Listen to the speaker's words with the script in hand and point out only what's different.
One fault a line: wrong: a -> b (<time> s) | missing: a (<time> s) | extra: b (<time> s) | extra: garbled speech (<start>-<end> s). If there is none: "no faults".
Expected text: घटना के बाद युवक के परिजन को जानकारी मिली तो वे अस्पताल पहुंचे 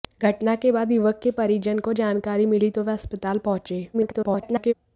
extra: garbled speech (3.9-4.7 s)